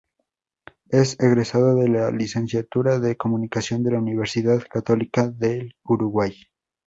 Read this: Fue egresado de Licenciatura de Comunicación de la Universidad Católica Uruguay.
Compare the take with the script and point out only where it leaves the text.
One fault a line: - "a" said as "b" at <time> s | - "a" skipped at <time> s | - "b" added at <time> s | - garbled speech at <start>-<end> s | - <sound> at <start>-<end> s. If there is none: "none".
- "Fue" said as "Es" at 0.9 s
- "la" added at 1.9 s
- "del" added at 5.3 s